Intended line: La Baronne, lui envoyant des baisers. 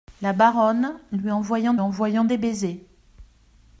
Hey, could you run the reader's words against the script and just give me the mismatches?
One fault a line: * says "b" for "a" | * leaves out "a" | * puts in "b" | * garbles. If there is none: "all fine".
* puts in "envoyant"